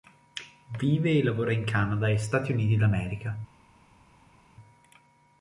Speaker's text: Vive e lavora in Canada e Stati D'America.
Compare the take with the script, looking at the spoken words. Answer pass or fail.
fail